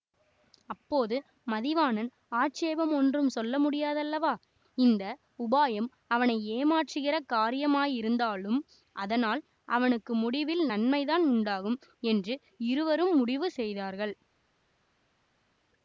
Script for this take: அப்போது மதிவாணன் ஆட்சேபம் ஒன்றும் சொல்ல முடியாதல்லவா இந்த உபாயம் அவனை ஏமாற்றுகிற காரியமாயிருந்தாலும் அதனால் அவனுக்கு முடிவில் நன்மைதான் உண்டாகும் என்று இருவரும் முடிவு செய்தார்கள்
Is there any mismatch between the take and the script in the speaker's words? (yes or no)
no